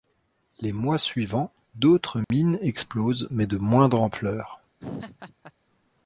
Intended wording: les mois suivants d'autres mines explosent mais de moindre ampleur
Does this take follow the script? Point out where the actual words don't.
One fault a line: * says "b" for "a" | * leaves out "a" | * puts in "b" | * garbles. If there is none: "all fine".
all fine